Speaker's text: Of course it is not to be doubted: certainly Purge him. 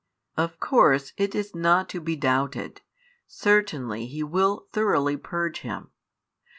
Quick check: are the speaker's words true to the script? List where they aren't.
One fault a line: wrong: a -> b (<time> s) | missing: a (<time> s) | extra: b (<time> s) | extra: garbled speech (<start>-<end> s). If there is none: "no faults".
extra: He will thoroughly (4.1 s)